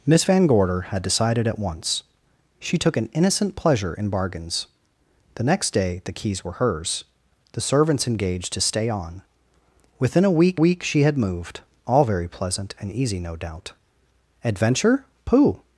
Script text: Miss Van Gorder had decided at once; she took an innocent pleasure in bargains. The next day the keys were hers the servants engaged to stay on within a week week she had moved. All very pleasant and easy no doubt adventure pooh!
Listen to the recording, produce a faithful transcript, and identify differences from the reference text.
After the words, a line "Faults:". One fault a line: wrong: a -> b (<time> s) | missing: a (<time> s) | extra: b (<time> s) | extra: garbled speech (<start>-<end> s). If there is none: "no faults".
Miss Van Gorder had decided at once; she took an innocent pleasure in bargains. The next day the keys were hers the servants engaged to stay on within a week week she had moved. All very pleasant and easy no doubt adventure pooh!
Faults:
no faults